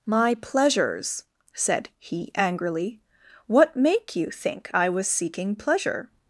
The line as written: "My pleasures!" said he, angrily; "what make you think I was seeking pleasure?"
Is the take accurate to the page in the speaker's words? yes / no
yes